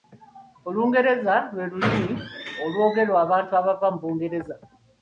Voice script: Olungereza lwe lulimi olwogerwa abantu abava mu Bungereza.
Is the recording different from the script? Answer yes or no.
no